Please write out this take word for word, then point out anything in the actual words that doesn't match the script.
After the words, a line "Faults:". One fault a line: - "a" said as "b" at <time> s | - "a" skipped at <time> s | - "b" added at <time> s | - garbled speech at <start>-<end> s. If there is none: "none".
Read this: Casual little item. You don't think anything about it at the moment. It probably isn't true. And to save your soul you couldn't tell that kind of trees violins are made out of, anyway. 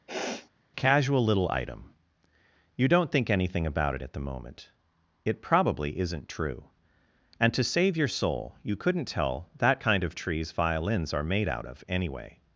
Casual little item. You don't think anything about it at the moment. It probably isn't true. And to save your soul you couldn't tell that kind of trees violins are made out of, anyway.
Faults:
none